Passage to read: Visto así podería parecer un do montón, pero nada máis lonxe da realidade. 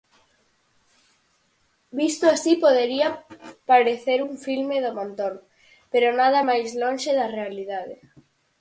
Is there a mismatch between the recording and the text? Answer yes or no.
yes